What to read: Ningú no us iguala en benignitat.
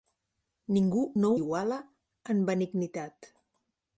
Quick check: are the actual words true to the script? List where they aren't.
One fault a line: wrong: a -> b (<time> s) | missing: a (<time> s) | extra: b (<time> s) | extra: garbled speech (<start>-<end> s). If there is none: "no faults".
missing: us (1.3 s)